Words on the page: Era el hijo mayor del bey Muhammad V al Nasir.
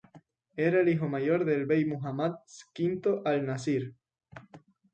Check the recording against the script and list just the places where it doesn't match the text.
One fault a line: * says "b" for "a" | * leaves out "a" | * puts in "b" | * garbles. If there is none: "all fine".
all fine